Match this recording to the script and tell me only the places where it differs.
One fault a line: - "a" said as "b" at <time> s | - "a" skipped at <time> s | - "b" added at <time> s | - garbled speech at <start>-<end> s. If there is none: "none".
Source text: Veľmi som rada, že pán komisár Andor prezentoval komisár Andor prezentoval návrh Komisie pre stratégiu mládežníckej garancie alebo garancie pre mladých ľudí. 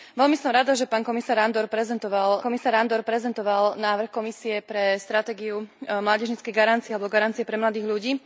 none